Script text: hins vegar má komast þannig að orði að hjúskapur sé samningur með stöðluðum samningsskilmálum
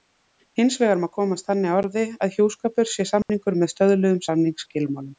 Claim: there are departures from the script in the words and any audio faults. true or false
true